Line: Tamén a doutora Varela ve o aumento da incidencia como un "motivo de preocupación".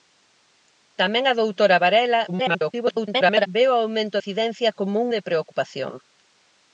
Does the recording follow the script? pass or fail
fail